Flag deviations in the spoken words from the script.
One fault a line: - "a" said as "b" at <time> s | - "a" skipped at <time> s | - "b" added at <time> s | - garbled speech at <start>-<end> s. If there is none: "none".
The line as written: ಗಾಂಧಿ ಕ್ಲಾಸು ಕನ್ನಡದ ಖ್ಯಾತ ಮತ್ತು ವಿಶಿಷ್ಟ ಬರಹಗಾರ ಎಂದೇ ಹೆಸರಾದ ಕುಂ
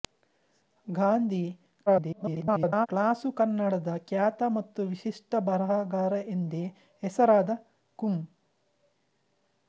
- garbled speech at 1.9-2.9 s